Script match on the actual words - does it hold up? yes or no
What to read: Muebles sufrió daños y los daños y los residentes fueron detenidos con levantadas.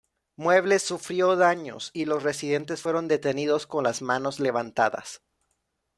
no